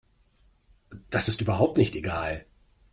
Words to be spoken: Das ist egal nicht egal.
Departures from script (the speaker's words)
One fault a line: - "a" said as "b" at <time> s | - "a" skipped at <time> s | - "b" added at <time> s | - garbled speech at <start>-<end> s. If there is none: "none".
- "egal" said as "überhaupt" at 1.4 s